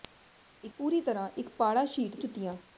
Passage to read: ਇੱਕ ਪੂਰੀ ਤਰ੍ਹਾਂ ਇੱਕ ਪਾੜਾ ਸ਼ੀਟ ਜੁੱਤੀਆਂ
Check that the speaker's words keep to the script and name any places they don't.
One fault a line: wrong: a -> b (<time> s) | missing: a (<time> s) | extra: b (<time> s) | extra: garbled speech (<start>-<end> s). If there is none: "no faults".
no faults